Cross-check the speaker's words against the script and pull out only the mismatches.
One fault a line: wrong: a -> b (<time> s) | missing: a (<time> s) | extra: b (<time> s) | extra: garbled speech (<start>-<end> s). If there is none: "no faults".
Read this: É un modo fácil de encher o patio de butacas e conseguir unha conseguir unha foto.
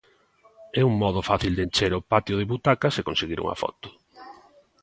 missing: conseguir unha (3.6 s)